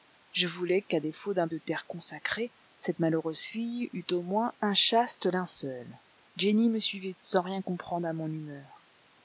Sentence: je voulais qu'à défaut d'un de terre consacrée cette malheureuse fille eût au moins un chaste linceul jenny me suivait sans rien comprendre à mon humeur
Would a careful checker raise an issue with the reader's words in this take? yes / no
no